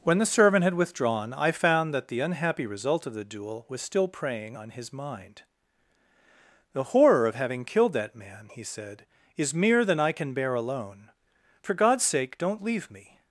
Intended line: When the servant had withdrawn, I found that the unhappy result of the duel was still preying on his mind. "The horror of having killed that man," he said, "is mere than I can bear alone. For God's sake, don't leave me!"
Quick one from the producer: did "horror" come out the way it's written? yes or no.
yes